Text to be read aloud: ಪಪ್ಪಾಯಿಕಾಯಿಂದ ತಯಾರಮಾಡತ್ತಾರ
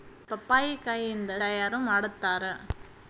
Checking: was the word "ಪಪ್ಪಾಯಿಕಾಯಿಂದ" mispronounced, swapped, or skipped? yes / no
no